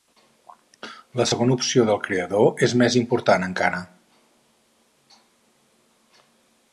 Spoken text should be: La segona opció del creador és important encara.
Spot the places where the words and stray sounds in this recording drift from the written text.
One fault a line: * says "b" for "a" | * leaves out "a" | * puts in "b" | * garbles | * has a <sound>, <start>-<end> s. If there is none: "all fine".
* puts in "més"